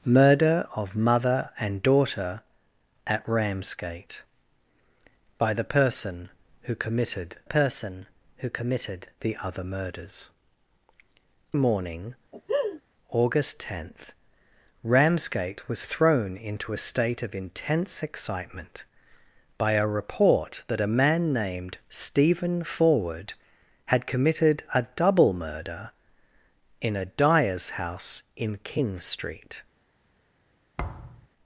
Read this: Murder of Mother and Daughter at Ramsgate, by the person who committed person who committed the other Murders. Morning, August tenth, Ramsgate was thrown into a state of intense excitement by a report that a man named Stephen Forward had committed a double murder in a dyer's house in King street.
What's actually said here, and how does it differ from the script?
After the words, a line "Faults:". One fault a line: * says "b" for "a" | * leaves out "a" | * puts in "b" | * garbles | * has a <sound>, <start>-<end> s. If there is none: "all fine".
Murder of Mother and Daughter at Ramsgate, by the person who committed person who committed the other Murders. Morning, August tenth, Ramsgate was thrown into a state of intense excitement by a report that a man named Stephen Forward had committed a double murder in a dyer's house in King street.
Faults:
* has a laugh, 12.3-12.8 s
* has a thud, 30.8-31.3 s